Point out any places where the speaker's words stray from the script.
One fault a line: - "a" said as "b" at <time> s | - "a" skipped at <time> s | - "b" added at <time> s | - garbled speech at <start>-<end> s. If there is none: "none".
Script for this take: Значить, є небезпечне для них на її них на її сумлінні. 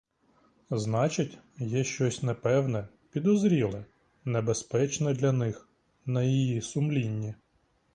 - "небезпечне для них на її" said as "щось непевне підозріле небезпечне для" at 1.8 s